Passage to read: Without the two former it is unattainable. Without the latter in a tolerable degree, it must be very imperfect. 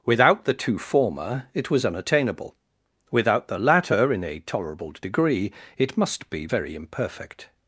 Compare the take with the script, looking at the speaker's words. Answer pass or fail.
fail